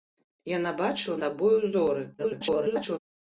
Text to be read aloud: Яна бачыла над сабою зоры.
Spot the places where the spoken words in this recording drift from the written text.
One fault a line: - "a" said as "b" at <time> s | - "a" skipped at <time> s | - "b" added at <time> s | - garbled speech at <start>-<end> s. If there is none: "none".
- "над" skipped at 1.2 s
- garbled speech at 2.2-3.0 s